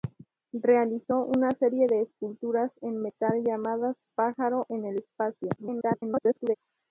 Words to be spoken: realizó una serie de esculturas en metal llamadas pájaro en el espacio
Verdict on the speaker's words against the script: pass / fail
fail